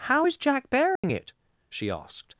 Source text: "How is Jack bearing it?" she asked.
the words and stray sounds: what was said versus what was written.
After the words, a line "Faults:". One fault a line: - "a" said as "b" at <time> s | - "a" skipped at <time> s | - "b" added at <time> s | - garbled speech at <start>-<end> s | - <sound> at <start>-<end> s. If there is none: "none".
"How is Jack bearing it?" she asked.
Faults:
- dropout at 1.0-1.0 s